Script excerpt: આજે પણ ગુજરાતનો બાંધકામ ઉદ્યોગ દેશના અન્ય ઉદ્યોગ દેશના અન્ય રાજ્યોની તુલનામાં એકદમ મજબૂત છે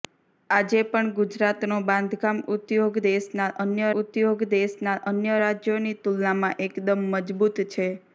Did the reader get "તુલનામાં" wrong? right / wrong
right